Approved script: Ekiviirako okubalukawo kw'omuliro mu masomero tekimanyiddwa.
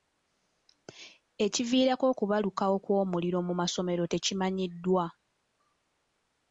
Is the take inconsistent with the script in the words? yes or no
no